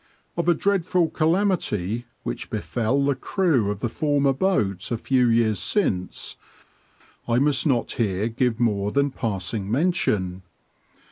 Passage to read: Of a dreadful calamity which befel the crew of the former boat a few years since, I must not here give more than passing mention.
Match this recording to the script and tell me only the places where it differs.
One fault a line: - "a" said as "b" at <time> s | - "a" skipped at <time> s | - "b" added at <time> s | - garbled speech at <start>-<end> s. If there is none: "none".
none